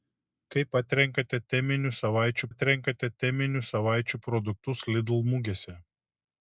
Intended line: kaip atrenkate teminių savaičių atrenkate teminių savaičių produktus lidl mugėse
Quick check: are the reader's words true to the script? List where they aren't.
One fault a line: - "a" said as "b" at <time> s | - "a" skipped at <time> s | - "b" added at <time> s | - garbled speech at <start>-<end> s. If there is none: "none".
none